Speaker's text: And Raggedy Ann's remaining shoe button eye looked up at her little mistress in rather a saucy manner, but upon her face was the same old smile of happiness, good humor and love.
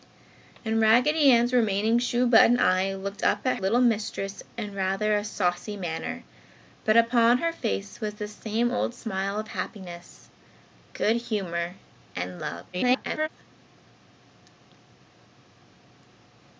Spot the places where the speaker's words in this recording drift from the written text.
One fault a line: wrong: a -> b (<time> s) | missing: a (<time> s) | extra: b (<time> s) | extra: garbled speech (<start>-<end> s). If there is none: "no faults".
missing: her (3.6 s)
extra: garbled speech (12.7-13.3 s)